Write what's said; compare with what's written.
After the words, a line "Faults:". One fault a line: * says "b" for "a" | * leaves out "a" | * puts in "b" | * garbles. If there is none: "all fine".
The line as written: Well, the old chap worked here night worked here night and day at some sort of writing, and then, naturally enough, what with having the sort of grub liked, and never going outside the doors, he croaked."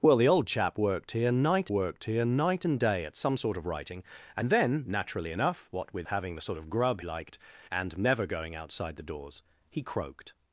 Well, the old chap worked here night worked here night and day at some sort of writing, and then, naturally enough, what with having the sort of grub liked, and never going outside the doors, he croaked."
Faults:
all fine